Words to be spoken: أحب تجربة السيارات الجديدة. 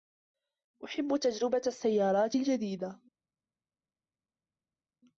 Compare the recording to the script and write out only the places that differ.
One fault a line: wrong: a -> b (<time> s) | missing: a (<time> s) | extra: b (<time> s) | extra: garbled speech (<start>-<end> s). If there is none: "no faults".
no faults